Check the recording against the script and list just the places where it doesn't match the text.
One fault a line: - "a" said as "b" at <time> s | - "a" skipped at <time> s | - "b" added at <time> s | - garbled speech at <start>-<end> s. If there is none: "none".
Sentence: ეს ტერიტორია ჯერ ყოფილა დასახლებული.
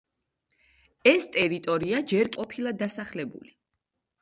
none